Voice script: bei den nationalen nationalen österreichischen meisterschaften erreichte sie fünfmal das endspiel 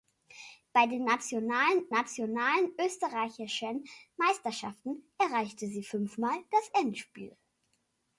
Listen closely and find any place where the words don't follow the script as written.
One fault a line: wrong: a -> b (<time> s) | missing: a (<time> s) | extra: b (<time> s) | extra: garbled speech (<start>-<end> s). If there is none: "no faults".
no faults